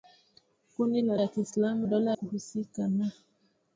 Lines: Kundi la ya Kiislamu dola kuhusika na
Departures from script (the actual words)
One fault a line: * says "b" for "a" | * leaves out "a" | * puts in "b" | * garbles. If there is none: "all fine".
all fine